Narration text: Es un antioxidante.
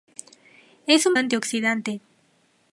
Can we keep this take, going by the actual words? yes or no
yes